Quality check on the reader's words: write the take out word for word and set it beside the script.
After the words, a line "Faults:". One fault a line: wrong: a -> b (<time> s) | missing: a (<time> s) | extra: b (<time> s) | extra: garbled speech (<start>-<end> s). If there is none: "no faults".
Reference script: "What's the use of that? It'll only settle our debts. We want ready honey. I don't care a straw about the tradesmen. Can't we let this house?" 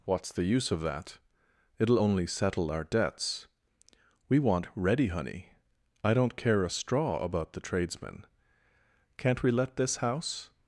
"What's the use of that? It'll only settle our debts. We want ready honey. I don't care a straw about the tradesmen. Can't we let this house?"
Faults:
no faults